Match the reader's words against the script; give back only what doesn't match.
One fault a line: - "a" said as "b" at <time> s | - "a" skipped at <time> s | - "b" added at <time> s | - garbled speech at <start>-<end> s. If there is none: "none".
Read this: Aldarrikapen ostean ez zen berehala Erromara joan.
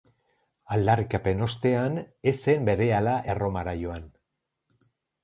none